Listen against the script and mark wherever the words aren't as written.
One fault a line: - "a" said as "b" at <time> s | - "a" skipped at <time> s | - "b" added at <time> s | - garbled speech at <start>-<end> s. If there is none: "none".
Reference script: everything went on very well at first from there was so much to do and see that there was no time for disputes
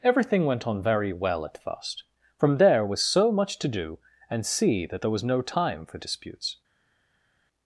none